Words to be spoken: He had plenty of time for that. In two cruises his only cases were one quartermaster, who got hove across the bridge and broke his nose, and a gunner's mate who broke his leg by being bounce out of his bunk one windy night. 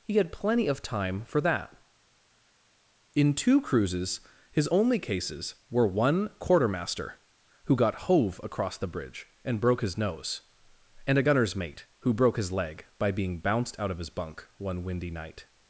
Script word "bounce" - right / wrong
wrong